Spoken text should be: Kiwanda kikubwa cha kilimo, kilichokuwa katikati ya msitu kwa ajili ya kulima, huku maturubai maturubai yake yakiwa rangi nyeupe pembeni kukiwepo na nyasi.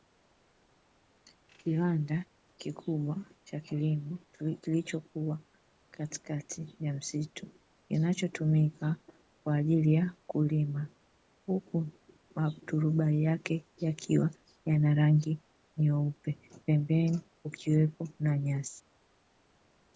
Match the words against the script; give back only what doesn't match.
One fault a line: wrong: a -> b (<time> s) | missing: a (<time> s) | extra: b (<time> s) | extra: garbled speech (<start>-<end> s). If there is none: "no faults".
extra: kinachotumika (7.9 s)
missing: maturubai (13.2 s)
extra: yana (14.6 s)